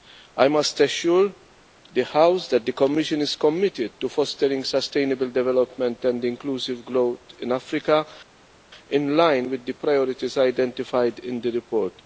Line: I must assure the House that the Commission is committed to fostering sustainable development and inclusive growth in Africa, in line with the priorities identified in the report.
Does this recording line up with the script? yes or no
yes